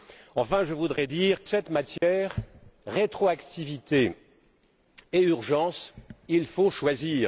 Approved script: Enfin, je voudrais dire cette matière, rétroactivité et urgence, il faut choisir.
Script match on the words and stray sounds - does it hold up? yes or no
no